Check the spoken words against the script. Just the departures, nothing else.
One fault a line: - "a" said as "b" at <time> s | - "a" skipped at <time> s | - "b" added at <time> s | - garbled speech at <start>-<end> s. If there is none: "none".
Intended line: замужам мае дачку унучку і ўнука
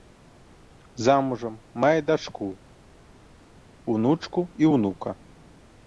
none